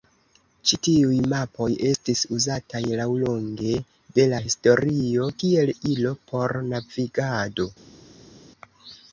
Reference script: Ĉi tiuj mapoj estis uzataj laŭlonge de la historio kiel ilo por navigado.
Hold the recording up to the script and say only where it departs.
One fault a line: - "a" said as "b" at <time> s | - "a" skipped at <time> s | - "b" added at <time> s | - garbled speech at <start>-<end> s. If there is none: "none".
none